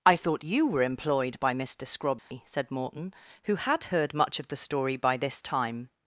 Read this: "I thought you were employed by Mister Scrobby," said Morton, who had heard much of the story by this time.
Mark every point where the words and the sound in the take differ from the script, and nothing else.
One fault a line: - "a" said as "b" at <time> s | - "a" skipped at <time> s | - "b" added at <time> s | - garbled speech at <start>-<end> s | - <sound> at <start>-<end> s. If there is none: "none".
- dropout at 2.2-2.3 s